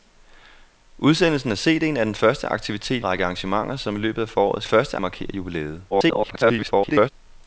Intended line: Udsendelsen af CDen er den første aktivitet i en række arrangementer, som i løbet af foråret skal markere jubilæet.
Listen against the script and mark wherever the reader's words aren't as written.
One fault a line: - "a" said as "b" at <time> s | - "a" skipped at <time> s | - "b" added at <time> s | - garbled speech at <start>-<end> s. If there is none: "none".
- "en" skipped at 3.0 s
- "skal" said as "første" at 4.7 s
- garbled speech at 5.9-7.1 s